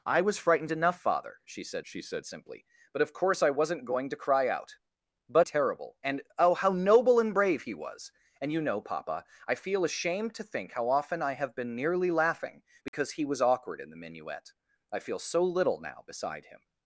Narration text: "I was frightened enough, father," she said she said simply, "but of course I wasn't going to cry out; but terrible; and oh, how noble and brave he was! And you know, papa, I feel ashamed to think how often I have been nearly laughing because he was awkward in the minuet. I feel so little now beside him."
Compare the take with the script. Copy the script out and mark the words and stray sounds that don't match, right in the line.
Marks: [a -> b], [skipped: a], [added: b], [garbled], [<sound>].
"I was frightened enough, father," she said she said simply, "but of course I wasn't going to cry out; but terrible; and oh, how noble and brave he was! And you know, papa, I feel ashamed to think how often I have been nearly laughing because [dropout] he was awkward in the minuet. I feel so little now beside him."